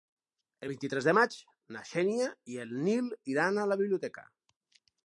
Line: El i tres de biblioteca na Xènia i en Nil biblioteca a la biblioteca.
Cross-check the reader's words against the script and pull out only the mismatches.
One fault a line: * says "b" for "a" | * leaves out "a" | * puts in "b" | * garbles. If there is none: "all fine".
* puts in "vint"
* says "maig" for "biblioteca"
* says "iran" for "biblioteca"